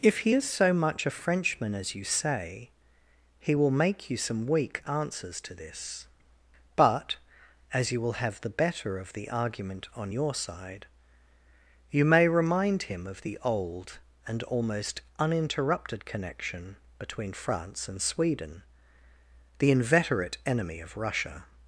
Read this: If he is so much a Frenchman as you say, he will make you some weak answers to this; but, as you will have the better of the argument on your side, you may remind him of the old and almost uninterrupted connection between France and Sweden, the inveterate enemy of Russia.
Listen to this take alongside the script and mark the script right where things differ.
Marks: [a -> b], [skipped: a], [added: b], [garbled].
If he is so much a Frenchman as you say, he will make you some weak answers to this; but, as you will have the better of the argument on your side, you may remind him of the old and almost uninterrupted connection between France and Sweden, the inveterate enemy of Russia.